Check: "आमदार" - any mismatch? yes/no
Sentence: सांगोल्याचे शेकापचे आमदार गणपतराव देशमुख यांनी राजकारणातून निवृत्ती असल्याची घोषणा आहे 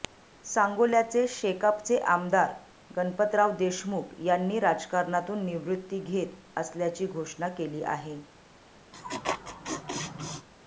no